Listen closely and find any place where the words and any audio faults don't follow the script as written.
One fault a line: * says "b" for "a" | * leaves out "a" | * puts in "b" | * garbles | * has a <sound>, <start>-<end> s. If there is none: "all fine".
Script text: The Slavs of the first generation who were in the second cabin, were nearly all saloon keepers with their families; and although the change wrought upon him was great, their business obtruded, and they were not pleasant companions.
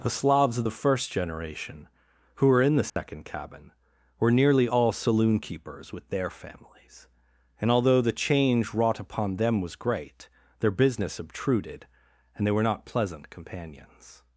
* has a dropout, 2.9-3.0 s
* says "them" for "him"